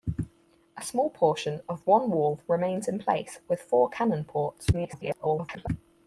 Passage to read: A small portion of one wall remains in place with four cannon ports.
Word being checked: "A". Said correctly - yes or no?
yes